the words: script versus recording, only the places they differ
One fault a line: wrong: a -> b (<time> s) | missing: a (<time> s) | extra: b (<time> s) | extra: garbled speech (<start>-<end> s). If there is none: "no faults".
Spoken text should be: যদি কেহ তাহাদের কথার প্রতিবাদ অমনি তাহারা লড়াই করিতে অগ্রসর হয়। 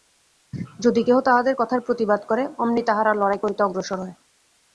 extra: করে (2.2 s)